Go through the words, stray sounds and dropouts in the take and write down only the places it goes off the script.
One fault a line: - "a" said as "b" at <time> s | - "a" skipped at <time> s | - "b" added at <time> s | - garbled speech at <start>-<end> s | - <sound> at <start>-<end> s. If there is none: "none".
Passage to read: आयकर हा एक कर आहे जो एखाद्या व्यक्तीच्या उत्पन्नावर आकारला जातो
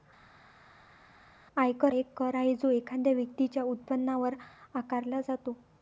- "हा" skipped at 1.9 s